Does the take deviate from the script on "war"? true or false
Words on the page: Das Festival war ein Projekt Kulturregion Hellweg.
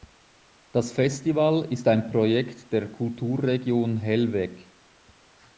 true